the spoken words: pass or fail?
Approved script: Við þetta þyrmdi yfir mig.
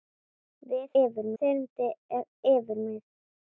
fail